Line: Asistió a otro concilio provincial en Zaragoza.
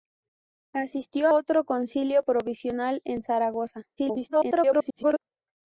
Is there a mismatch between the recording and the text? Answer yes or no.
yes